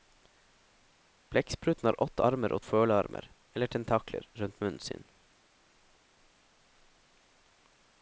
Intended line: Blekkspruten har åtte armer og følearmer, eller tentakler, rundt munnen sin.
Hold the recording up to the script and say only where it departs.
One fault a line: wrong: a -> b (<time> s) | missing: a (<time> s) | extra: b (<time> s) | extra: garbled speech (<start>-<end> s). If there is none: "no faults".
no faults